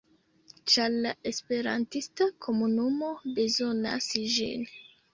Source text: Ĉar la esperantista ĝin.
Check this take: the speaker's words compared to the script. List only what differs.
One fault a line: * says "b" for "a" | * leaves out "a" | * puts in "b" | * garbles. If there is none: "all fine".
* puts in "komunumo bezonas"